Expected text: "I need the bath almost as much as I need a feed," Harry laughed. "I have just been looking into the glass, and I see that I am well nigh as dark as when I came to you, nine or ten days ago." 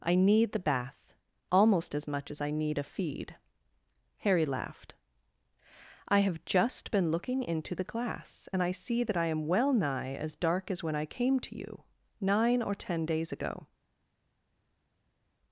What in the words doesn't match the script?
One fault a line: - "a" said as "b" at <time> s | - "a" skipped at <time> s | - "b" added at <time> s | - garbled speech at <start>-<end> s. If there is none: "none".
none